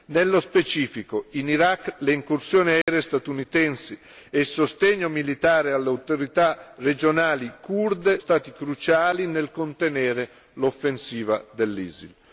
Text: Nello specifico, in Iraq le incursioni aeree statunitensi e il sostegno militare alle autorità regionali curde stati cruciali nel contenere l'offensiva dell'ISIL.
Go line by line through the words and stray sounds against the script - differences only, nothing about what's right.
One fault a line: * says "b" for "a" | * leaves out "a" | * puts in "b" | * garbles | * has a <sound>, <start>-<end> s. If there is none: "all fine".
* has a dropout, 2.8-2.9 s